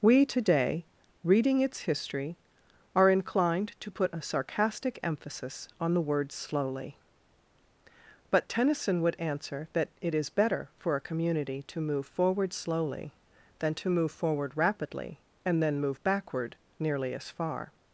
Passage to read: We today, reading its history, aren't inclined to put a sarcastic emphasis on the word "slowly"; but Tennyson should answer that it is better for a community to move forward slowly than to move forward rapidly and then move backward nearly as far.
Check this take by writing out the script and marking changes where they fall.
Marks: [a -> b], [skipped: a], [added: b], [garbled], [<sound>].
We today, reading its history, [aren't -> are] inclined to put a sarcastic emphasis on the word "slowly"; but Tennyson [should -> would] answer that it is better for a community to move forward slowly than to move forward rapidly and then move backward nearly as far.